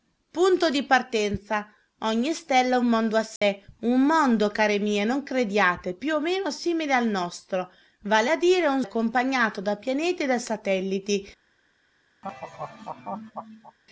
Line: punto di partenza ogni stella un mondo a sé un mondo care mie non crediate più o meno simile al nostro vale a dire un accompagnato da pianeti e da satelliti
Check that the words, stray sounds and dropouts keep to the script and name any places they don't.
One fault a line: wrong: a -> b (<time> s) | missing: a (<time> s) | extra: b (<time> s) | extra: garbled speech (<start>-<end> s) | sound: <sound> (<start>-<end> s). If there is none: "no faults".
sound: dropout (3.4-3.4 s)
sound: laugh (12.2-13.8 s)